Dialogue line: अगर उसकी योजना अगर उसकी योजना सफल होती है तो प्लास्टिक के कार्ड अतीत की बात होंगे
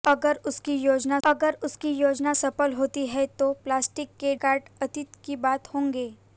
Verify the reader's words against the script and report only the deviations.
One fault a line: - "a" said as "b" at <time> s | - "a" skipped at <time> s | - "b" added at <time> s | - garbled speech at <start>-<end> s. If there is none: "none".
none